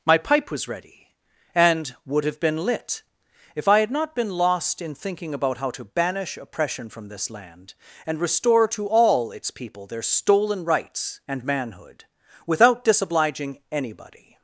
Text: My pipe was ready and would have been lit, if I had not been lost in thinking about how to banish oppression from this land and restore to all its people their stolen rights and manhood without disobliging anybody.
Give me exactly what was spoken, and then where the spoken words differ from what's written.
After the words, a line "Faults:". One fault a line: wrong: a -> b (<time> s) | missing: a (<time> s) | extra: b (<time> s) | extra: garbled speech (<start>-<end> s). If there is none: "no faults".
My pipe was ready and would have been lit, if I had not been lost in thinking about how to banish oppression from this land and restore to all its people their stolen rights and manhood without disobliging anybody.
Faults:
no faults